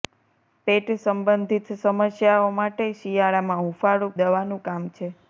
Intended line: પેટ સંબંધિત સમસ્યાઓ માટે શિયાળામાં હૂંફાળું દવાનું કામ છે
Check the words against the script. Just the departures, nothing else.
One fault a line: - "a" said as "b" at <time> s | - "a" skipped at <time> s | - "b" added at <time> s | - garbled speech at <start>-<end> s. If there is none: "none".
none